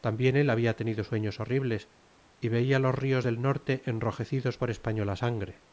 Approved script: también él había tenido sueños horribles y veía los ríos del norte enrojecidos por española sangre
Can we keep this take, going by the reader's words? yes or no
yes